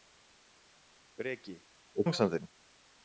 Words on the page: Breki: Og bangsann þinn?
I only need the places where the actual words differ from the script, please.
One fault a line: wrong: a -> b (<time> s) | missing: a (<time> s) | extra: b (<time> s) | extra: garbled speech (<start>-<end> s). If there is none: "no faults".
no faults